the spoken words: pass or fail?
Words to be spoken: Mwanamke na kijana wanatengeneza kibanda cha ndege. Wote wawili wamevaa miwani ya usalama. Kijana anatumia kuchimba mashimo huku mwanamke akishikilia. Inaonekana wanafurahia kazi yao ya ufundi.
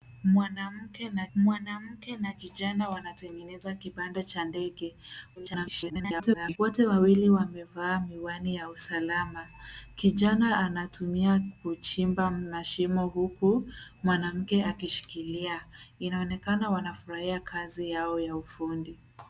fail